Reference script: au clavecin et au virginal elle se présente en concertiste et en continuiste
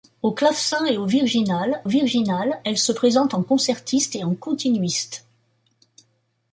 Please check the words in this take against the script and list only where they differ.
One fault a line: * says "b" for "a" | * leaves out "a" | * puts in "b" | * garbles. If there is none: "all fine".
* puts in "virginal"